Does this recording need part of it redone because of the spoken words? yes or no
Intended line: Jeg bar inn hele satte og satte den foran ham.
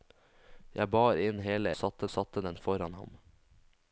no